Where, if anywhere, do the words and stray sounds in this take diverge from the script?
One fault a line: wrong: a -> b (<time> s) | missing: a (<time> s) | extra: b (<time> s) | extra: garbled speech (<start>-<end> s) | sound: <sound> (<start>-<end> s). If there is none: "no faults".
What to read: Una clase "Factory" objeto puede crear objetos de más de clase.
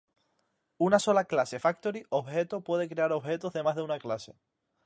extra: sola (1.0 s)
extra: una (3.8 s)